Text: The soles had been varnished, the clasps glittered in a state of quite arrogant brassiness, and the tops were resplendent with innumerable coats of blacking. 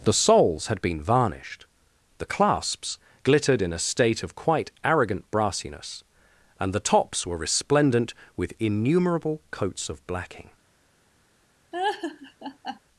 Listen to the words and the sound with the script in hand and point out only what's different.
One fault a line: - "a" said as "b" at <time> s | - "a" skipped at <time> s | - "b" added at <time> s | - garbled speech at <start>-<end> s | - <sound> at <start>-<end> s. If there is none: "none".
- laugh at 11.7-12.8 s